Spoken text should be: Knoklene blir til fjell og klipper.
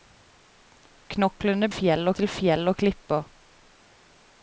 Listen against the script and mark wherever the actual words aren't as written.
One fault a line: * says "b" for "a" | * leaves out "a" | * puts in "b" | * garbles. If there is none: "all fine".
* says "fjell" for "blir"